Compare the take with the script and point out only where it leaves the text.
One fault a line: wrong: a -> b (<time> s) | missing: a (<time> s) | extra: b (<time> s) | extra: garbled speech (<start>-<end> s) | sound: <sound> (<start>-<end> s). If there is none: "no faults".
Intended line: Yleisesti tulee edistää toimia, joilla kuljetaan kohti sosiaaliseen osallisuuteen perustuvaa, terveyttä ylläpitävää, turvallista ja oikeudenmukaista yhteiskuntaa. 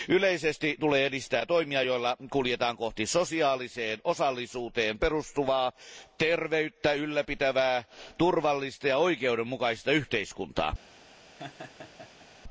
sound: laugh (11.4-12.3 s)